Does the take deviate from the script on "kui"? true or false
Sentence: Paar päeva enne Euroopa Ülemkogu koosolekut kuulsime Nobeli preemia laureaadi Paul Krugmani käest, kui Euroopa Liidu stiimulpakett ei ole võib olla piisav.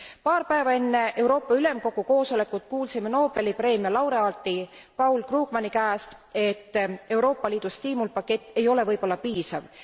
true